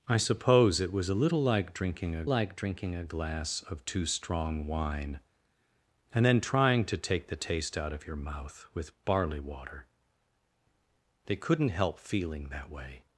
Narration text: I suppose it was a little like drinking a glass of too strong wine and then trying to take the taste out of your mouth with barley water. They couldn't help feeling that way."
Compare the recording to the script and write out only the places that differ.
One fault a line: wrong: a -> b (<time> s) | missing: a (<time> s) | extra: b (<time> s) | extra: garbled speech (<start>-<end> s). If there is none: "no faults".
extra: like drinking a (2.3 s)